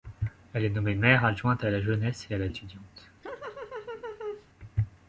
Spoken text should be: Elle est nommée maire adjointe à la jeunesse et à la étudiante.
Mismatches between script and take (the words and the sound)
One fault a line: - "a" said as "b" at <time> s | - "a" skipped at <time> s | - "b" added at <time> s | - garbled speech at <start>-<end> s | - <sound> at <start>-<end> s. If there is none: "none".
- laugh at 3.2-4.5 s